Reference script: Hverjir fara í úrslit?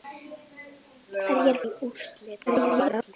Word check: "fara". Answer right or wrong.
wrong